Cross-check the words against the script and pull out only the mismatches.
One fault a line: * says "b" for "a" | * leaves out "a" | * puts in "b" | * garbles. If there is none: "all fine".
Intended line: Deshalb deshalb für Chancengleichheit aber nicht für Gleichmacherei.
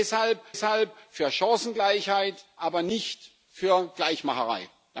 all fine